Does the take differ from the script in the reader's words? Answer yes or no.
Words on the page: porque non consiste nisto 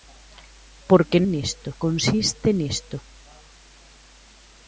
yes